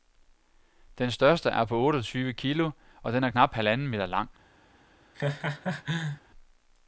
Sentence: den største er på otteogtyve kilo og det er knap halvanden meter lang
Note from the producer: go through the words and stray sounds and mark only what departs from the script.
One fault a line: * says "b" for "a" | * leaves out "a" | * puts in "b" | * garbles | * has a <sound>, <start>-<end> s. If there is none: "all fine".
* says "den" for "det"
* has a laugh, 5.1-6.2 s